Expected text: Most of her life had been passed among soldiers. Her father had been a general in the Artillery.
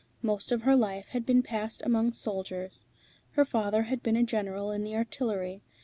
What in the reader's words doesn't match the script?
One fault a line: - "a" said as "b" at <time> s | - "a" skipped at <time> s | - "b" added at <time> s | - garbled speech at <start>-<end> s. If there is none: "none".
none